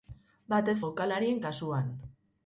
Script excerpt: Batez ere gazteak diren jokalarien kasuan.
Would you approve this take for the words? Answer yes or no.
no